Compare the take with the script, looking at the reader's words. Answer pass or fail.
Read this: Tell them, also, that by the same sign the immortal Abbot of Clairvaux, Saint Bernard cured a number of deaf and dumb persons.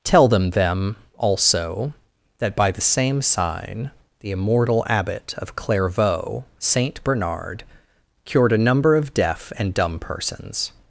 fail